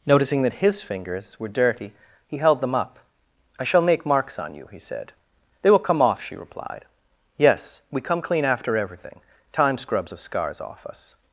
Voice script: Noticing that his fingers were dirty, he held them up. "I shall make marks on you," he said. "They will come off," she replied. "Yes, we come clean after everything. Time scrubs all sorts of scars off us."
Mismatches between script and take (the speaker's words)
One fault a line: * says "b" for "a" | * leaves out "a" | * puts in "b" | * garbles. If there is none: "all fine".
* leaves out "all sorts"